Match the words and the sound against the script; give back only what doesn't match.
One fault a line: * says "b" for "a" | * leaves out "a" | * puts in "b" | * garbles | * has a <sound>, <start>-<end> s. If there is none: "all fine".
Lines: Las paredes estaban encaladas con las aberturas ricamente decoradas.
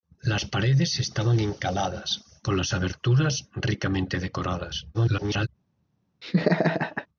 * garbles
* has a laugh, 6.2-7.1 s